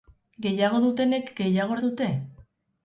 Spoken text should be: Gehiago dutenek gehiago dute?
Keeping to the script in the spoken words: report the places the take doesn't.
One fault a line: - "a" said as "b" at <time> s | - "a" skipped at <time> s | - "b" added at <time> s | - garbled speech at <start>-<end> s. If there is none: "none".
none